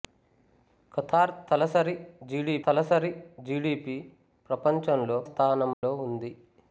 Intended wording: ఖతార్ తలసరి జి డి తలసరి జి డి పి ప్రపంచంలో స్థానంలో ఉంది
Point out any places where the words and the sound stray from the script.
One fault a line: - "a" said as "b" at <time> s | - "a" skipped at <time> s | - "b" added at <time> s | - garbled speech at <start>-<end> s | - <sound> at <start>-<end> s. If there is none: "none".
- dropout at 5.7-5.8 s